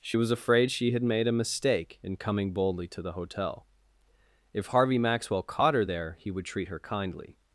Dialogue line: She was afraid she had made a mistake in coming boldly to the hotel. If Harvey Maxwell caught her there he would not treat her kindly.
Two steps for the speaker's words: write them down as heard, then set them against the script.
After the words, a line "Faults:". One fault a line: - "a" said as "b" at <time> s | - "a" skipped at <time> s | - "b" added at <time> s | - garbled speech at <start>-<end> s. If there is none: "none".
She was afraid she had made a mistake in coming boldly to the hotel. If Harvey Maxwell caught her there he would treat her kindly.
Faults:
- "not" skipped at 6.5 s